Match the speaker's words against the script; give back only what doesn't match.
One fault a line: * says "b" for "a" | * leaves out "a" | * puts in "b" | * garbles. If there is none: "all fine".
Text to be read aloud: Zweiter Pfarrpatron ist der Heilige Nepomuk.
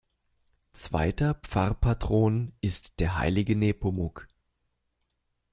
all fine